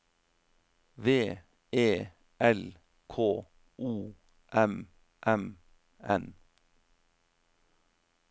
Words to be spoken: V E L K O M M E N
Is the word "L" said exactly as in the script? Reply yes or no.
yes